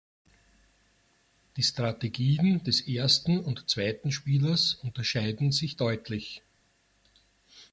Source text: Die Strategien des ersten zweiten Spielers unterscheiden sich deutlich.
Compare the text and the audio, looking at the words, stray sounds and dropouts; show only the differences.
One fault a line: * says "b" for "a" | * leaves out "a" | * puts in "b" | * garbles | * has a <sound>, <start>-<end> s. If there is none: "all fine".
* puts in "und"